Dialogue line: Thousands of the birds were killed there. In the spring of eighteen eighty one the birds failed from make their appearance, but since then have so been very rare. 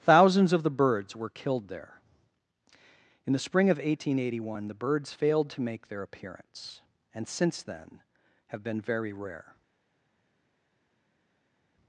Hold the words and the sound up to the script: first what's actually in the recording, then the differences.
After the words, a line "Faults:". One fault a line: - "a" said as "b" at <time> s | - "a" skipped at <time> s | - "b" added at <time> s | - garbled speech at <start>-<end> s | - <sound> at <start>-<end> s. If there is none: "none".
Thousands of the birds were killed there. In the spring of eighteen eighty one the birds failed to make their appearance, and since then have been very rare.
Faults:
- "from" said as "to" at 5.5 s
- "but" said as "and" at 7.1 s
- "so" skipped at 8.6 s